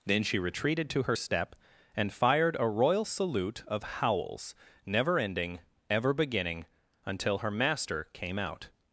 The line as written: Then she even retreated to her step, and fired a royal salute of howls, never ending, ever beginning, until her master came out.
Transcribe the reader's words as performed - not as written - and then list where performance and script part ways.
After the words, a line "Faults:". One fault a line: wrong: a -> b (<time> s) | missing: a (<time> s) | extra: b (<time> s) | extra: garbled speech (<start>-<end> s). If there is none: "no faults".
Then she retreated to her step, and fired a royal salute of howls, never ending, ever beginning, until her master came out.
Faults:
missing: even (0.4 s)